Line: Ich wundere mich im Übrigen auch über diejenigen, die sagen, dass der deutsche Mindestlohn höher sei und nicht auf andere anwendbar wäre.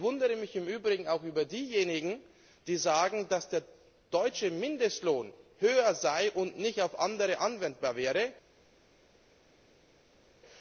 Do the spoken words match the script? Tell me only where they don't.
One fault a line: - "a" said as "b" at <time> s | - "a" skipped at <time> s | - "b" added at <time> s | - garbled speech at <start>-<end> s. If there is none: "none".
none